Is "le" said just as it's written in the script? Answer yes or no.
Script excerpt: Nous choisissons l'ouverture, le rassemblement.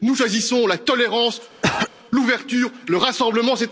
yes